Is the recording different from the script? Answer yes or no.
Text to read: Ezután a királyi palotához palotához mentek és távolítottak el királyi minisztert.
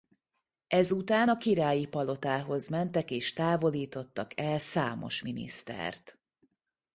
yes